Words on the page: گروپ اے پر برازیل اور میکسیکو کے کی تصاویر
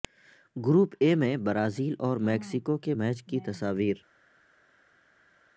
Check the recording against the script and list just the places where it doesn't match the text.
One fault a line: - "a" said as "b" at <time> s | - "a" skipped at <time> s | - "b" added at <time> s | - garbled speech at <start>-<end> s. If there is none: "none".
- "پر" said as "میں" at 1.1 s
- "میچ" added at 2.9 s